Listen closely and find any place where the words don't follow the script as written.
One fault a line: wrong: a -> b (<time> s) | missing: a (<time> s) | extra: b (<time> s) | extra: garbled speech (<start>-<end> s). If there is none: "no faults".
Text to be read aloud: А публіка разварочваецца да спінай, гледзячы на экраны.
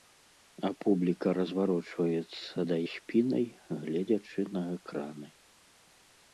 no faults